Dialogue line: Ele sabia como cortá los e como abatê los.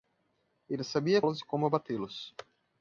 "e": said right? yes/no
yes